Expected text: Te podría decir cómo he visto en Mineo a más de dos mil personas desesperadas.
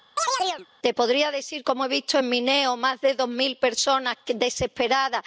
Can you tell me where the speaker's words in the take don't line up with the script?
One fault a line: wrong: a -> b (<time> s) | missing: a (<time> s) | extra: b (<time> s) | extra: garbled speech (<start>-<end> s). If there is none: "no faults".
no faults